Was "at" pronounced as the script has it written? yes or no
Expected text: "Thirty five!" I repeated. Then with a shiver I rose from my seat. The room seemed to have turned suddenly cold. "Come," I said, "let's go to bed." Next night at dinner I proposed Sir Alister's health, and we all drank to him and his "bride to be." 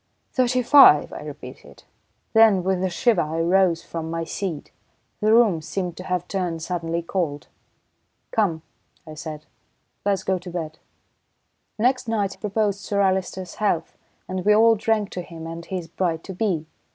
no